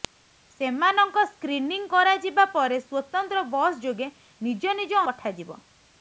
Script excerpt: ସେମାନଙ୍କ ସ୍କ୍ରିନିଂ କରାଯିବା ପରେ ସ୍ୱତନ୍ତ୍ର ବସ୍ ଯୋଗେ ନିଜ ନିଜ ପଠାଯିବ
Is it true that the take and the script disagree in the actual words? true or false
false